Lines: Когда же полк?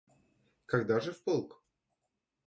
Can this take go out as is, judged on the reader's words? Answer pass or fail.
fail